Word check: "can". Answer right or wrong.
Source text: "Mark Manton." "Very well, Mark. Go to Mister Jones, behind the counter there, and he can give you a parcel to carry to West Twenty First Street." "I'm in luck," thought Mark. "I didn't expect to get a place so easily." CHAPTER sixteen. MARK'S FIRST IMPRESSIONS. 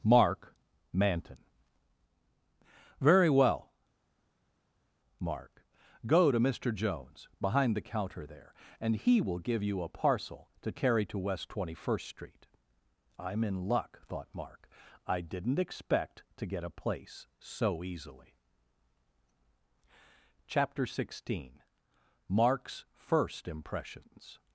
wrong